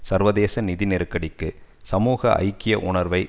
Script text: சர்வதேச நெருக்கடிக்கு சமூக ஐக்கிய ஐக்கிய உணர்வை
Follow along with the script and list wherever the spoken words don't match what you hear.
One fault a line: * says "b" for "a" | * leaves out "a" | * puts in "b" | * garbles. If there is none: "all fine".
* puts in "நிதி"
* leaves out "ஐக்கிய"